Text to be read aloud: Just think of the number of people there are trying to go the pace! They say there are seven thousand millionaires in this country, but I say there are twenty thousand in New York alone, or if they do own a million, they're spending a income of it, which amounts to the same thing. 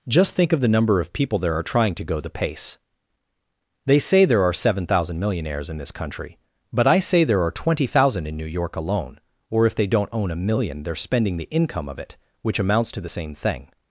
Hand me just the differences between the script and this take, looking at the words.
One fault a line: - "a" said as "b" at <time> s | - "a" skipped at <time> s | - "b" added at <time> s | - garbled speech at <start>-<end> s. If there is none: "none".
- "do" said as "don't" at 9.8 s
- "a" said as "the" at 11.4 s